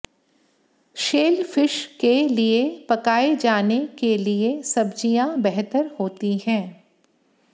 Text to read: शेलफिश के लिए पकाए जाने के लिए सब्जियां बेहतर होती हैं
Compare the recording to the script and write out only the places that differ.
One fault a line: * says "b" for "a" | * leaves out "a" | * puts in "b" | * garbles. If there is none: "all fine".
all fine